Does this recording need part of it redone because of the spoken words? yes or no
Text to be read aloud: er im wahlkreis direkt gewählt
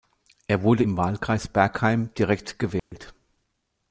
yes